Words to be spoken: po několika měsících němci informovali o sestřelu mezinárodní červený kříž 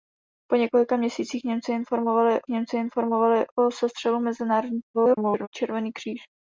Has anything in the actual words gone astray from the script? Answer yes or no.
yes